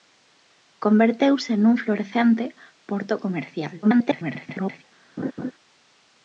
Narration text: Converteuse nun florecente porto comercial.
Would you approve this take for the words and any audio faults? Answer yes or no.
no